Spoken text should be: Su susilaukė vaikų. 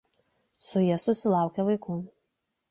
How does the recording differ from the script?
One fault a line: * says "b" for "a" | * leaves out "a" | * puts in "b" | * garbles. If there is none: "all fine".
* puts in "ja"